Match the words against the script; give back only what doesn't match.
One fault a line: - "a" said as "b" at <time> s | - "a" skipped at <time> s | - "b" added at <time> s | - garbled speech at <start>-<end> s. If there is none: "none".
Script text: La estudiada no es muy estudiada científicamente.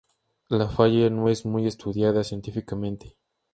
- "estudiada" said as "falla" at 0.7 s